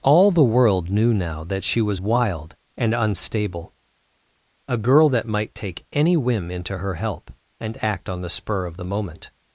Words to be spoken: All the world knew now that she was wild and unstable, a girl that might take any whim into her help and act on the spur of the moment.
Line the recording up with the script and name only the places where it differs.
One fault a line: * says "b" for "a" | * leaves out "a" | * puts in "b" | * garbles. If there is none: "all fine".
all fine